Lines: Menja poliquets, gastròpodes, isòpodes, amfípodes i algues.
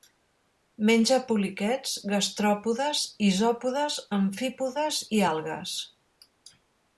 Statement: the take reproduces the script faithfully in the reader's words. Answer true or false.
true